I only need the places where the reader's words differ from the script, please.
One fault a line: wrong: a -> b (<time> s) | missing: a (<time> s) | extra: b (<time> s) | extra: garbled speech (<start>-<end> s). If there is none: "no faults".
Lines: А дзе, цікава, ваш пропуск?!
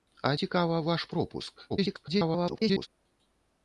missing: дзе (0.3 s)
extra: garbled speech (1.7-2.9 s)